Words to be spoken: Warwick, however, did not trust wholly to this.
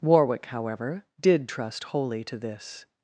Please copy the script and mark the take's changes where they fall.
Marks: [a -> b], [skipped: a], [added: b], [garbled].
Warwick, however, did [skipped: not] trust wholly to this.